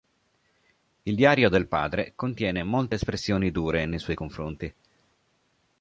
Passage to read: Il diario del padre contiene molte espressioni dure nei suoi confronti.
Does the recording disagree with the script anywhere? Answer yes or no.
no